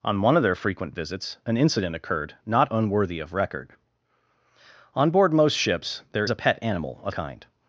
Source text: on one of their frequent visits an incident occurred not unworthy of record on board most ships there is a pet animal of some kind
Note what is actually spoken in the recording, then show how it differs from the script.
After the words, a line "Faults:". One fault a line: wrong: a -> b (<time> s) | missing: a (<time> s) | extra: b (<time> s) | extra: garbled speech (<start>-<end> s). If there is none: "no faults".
on one of their frequent visits an incident occurred not unworthy of record on board most ships there a pet animal of kind
Faults:
missing: is (6.3 s)
missing: some (7.2 s)